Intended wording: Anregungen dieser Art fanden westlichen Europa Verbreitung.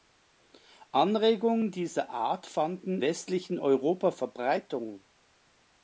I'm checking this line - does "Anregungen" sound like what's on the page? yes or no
yes